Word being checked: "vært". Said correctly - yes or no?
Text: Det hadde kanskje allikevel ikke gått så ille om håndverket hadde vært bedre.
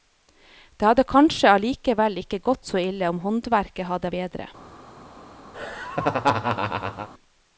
no